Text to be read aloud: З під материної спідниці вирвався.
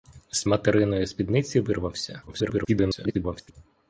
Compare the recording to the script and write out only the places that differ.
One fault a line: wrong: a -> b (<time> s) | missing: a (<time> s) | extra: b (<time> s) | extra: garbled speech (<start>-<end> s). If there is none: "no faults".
missing: під (0.4 s)
extra: garbled speech (2.3-3.5 s)